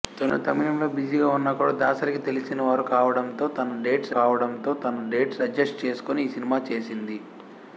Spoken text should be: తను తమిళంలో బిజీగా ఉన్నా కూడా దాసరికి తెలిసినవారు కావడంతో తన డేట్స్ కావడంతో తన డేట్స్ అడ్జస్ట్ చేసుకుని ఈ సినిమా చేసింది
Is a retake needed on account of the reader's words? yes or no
no